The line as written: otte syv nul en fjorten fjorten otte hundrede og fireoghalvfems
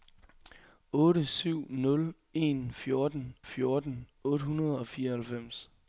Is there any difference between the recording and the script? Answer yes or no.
no